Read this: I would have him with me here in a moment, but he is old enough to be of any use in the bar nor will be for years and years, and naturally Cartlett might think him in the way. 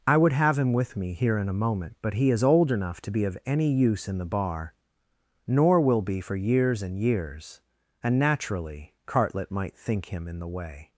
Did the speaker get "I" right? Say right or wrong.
right